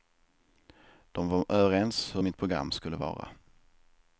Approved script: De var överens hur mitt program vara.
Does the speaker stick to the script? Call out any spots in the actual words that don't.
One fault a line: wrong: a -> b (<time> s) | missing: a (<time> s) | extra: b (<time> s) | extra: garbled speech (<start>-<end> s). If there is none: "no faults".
extra: skulle (2.7 s)